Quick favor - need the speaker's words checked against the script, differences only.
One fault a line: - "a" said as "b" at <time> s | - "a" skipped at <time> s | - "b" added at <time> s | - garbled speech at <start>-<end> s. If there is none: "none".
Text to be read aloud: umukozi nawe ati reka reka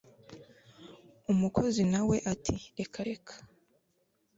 none